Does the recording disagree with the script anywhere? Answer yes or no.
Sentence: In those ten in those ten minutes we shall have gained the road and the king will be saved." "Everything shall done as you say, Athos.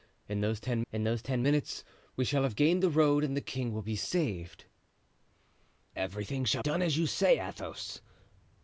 no